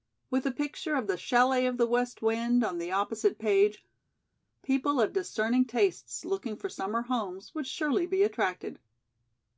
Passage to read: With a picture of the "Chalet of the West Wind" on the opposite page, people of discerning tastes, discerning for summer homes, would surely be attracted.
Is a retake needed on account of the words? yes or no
yes